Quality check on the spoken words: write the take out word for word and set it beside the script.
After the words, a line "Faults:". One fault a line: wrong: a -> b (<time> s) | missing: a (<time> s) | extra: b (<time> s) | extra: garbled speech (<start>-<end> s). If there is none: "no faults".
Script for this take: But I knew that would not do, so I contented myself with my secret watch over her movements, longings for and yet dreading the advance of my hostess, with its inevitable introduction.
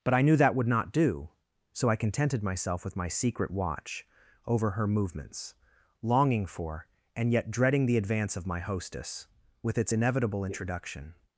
But I knew that would not do, so I contented myself with my secret watch over her movements, longing for and yet dreading the advance of my hostess, with its inevitable introduction.
Faults:
wrong: longings -> longing (6.0 s)